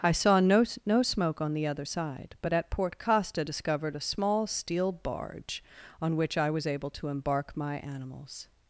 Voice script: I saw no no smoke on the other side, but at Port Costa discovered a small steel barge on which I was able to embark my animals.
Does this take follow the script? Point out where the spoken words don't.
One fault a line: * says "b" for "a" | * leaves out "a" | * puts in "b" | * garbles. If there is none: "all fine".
all fine